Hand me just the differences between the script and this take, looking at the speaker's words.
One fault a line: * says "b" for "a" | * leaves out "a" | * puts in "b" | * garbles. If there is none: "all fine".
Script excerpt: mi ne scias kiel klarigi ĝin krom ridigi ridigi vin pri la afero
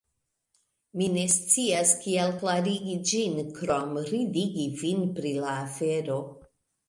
* leaves out "ridigi"